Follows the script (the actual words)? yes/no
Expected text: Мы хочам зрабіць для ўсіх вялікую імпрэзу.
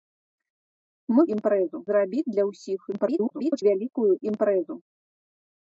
no